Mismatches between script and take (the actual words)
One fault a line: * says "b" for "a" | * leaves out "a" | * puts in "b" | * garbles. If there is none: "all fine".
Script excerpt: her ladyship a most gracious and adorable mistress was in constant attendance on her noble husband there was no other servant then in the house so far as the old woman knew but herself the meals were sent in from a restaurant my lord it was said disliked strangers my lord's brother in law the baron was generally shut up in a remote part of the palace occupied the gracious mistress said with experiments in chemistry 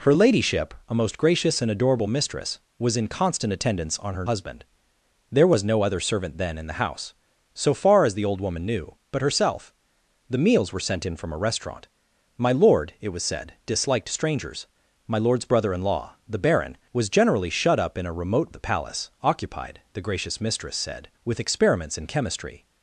* leaves out "noble"
* leaves out "part"